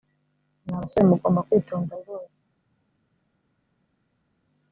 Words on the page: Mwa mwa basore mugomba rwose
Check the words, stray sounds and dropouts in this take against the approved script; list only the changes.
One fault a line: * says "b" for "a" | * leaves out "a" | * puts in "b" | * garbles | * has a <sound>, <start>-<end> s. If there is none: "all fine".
* leaves out "mwa"
* puts in "kwitonda"